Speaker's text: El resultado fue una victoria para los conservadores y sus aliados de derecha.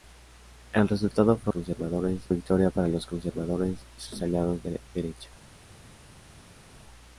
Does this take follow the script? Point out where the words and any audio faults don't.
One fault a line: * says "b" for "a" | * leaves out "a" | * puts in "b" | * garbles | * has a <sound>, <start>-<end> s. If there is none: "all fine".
* says "conservadores" for "una"